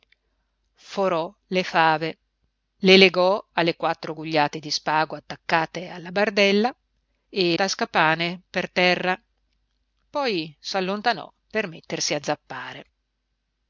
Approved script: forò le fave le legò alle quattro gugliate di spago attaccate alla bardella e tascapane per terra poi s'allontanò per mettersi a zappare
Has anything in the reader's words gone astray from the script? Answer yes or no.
no